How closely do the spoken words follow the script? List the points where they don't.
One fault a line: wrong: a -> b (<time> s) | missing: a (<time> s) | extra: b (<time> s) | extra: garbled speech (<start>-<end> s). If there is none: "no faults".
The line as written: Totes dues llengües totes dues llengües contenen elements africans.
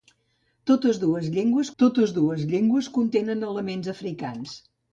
no faults